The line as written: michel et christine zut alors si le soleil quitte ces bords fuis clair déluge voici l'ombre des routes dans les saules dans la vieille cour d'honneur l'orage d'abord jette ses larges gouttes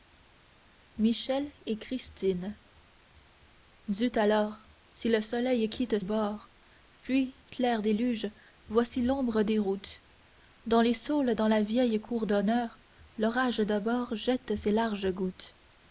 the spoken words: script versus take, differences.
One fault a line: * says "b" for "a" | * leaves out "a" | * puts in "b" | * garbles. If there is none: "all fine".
* leaves out "ces"